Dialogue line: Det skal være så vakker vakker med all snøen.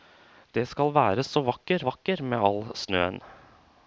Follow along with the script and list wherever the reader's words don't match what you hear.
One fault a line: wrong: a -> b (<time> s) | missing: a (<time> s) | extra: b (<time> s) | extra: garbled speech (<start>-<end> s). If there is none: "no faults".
no faults